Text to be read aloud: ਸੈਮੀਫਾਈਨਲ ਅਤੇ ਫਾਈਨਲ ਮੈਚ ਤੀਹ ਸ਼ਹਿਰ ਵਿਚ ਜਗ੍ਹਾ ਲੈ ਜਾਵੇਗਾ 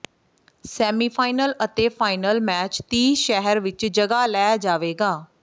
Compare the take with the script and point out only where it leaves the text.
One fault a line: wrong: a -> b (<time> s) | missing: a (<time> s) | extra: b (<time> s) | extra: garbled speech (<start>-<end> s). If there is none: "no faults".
no faults